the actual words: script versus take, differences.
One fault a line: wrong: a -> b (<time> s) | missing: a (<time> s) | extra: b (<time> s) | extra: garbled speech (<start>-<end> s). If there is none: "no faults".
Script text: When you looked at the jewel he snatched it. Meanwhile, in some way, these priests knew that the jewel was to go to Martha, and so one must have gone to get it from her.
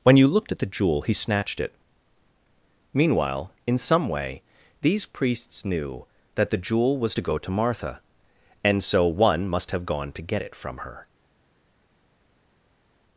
no faults